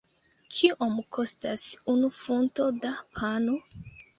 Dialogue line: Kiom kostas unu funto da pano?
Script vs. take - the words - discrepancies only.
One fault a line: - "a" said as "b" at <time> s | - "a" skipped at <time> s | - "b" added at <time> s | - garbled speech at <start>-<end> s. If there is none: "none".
none